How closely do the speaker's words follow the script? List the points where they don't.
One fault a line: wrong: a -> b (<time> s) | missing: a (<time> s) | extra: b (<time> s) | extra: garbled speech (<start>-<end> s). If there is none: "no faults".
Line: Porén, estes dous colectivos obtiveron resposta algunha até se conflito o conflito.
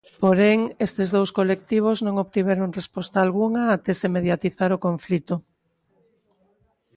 extra: non (2.0 s)
wrong: conflito -> mediatizar (4.2 s)